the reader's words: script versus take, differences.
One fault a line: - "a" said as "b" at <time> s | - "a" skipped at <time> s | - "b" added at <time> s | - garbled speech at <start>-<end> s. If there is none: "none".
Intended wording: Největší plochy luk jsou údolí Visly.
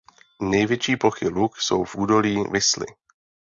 - "v" added at 1.8 s